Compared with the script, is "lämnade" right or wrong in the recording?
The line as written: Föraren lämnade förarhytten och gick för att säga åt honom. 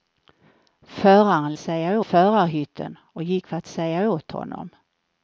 wrong